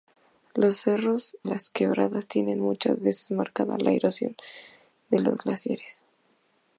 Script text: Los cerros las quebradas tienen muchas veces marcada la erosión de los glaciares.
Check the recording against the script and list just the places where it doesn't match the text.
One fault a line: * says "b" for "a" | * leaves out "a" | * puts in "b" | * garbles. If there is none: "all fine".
all fine